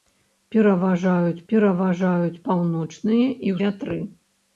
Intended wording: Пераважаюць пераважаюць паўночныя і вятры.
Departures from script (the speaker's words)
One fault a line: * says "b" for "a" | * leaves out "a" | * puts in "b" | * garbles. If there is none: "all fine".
all fine